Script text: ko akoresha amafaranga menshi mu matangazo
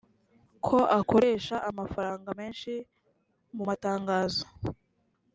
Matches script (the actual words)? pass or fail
pass